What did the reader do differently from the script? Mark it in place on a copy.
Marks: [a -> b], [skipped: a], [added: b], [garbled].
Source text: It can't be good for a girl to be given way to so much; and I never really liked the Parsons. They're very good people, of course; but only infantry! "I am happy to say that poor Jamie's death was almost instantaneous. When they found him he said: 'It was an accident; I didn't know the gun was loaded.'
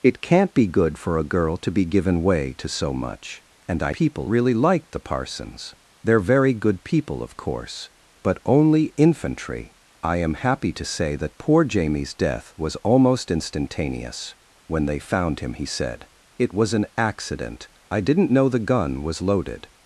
It can't be good for a girl to be given way to so much; and I [never -> people] really liked the Parsons. They're very good people, of course; but only infantry! "I am happy to say that poor Jamie's death was almost instantaneous. When they found him he said: 'It was an accident; I didn't know the gun was loaded.'